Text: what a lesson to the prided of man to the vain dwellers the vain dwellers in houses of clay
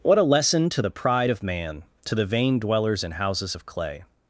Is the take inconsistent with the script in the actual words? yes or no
yes